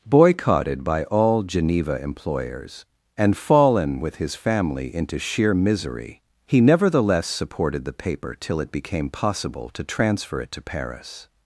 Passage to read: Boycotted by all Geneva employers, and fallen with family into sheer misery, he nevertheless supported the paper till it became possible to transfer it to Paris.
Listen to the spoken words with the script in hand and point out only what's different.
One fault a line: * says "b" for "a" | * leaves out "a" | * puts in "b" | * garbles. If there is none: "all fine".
* puts in "his"